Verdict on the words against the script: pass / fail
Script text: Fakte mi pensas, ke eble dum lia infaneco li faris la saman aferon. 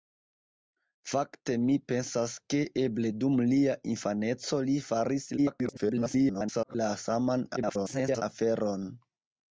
fail